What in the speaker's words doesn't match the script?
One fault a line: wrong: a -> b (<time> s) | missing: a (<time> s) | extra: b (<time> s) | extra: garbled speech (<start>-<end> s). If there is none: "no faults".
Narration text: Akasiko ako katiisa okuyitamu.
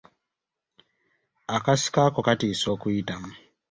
no faults